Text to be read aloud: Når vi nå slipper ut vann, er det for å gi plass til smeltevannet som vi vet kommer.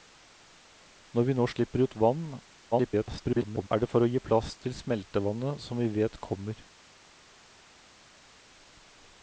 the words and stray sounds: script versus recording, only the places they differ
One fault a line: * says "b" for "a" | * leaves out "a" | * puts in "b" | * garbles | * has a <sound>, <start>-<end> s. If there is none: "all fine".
* garbles